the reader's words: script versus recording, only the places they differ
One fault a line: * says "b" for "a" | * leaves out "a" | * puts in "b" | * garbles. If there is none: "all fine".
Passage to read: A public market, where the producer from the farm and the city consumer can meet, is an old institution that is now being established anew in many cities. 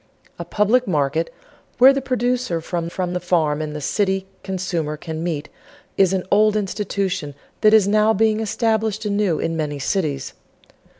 * puts in "from"